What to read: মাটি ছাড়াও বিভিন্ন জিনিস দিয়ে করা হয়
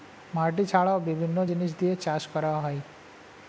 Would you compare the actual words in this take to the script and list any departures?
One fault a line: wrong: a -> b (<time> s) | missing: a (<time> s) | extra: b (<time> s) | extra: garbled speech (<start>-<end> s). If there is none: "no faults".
extra: চাষ (2.0 s)